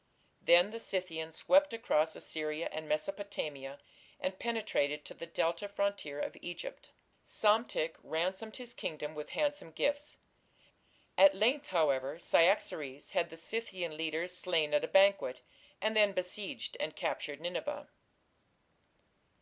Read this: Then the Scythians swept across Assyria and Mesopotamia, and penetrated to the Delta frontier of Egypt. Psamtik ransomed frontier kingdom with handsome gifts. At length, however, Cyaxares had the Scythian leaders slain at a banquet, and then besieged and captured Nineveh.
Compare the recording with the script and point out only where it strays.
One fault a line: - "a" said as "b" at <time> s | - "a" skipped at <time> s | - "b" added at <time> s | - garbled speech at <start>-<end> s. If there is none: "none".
- "frontier" said as "his" at 8.6 s